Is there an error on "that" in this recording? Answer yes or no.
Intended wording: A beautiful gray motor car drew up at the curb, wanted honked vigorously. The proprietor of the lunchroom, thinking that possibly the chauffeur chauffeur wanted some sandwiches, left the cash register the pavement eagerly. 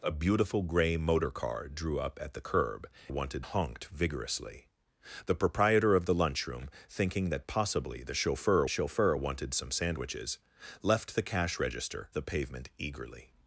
no